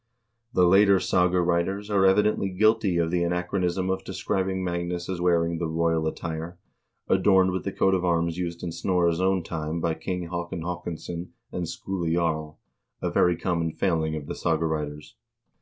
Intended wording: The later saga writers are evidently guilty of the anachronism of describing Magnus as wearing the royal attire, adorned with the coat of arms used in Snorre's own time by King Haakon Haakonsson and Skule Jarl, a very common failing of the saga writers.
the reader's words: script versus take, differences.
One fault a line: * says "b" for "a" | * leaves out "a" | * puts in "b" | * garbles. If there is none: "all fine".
all fine